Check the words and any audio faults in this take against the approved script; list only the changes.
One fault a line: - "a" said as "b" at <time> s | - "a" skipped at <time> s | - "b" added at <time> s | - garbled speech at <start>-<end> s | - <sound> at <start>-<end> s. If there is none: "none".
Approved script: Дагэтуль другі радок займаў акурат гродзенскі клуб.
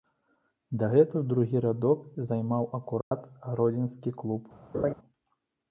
- dropout at 3.0-3.1 s
- laugh at 4.7-4.9 s